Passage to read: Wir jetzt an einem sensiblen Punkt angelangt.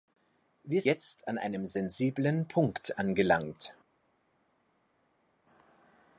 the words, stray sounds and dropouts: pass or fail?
pass